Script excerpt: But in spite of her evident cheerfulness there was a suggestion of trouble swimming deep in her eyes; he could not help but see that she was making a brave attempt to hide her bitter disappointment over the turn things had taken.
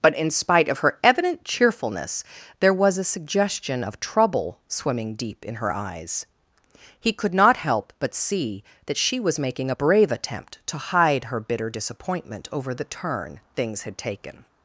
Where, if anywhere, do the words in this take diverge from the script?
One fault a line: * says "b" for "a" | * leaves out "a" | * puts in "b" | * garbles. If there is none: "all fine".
all fine